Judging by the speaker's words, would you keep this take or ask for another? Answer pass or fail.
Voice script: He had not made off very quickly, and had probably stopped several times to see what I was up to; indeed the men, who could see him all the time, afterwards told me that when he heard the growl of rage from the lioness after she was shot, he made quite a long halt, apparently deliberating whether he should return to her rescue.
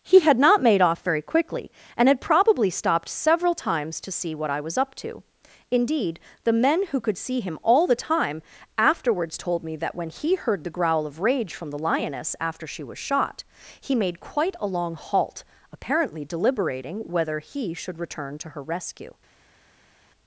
pass